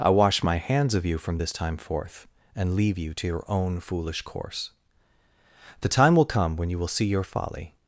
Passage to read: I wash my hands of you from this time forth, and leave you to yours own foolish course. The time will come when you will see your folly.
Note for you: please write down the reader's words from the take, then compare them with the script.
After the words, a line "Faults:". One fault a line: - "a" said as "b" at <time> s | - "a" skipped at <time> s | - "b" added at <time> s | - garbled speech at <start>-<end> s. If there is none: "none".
I wash my hands of you from this time forth, and leave you to your own foolish course. The time will come when you will see your folly.
Faults:
- "yours" said as "your" at 3.3 s